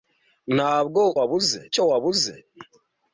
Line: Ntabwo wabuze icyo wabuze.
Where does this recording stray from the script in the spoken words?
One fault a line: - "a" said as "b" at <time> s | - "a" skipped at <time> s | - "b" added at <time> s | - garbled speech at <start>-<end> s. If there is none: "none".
none